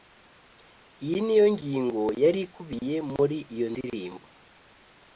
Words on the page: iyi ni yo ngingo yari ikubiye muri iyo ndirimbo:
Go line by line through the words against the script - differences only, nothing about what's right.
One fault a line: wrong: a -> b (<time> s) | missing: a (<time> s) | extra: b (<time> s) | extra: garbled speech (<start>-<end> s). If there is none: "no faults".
no faults